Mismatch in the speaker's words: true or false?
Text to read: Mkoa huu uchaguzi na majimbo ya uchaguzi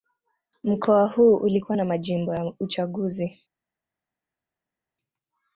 true